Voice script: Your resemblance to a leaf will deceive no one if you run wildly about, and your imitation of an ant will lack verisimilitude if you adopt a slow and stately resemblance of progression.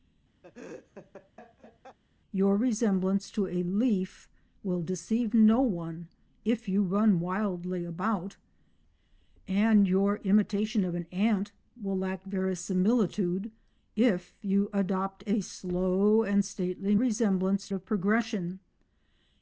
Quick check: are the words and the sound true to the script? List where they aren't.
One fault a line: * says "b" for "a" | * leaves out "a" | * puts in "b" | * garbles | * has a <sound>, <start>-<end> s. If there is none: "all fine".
* has a laugh, 0.4-2.0 s